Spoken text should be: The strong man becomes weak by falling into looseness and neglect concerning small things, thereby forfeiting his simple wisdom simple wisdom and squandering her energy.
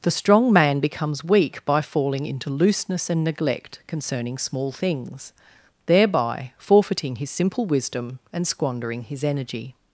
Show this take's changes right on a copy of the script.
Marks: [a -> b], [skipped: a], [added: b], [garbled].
The strong man becomes weak by falling into looseness and neglect concerning small things, thereby forfeiting his simple wisdom [skipped: simple wisdom] and squandering [her -> his] energy.